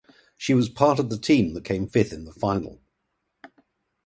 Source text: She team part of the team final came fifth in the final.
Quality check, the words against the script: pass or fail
fail